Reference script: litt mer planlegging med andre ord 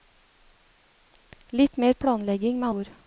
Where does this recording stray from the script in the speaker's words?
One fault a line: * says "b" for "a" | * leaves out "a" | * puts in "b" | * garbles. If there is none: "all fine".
* leaves out "andre"